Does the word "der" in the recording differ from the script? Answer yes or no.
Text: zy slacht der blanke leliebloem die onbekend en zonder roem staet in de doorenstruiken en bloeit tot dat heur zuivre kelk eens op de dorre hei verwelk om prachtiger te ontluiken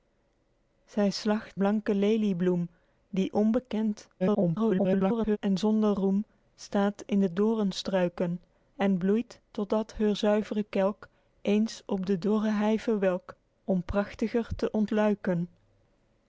yes